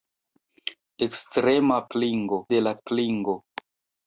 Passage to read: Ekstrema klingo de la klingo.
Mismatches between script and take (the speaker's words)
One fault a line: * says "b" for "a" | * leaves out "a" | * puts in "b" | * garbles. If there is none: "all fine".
all fine